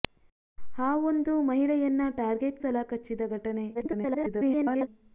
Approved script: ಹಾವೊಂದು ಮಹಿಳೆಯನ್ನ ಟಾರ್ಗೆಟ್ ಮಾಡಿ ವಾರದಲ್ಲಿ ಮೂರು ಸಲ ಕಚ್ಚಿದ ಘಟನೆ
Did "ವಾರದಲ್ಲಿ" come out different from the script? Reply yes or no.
yes